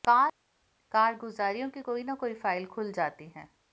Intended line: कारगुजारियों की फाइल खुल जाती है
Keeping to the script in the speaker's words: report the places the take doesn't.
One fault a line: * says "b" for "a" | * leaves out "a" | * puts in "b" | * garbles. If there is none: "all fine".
* puts in "कोई न कोई"